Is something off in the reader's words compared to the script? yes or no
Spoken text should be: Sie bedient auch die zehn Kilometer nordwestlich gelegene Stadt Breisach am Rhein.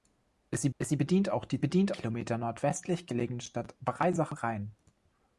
yes